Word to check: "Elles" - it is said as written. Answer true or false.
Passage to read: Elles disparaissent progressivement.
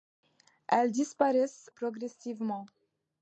true